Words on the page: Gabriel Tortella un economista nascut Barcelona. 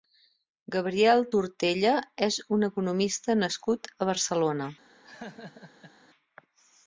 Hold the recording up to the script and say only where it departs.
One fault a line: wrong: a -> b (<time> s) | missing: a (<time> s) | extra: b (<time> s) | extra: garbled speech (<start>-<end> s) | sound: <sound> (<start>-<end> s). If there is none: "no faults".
extra: és (2.3 s)
extra: a (4.0 s)
sound: laugh (5.0-5.9 s)